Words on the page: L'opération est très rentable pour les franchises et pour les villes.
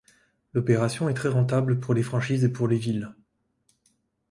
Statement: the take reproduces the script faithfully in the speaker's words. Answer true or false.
true